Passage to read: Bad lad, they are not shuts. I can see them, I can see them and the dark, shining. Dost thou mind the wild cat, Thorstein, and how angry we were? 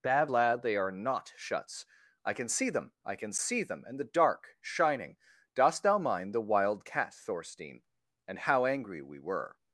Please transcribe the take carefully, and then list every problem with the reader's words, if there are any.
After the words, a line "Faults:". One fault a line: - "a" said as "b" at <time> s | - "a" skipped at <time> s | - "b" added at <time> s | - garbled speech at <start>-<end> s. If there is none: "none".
Bad lad, they are not shuts. I can see them, I can see them and the dark, shining. Dost thou mind the wild cat, Thorstein, and how angry we were?
Faults:
none